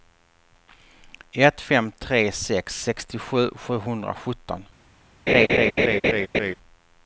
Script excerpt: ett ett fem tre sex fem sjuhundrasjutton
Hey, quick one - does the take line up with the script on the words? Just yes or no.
no